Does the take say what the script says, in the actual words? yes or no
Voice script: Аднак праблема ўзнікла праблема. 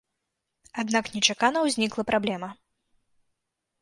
no